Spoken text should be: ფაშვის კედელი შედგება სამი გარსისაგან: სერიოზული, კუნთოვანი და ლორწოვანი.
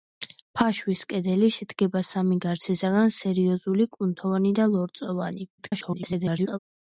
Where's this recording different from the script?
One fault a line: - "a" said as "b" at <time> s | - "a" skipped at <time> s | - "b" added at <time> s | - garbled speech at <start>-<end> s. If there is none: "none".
- garbled speech at 5.6-6.6 s